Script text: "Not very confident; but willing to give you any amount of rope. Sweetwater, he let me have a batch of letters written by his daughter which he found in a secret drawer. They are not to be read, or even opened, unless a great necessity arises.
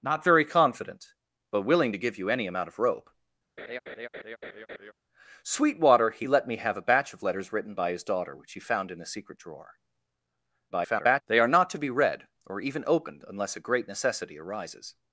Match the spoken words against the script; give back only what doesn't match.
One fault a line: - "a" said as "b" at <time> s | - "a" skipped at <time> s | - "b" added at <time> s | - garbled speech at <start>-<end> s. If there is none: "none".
- garbled speech at 10.7-11.2 s